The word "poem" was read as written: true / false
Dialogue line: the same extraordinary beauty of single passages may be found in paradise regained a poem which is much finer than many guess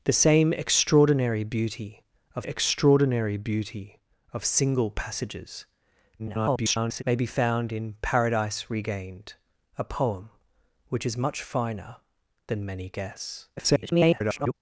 true